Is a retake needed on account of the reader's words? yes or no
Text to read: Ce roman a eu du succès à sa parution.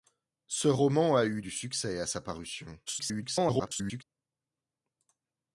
yes